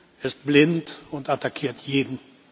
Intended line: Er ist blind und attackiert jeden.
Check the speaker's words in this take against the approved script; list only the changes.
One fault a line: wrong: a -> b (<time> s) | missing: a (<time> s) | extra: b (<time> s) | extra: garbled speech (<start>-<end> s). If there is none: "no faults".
no faults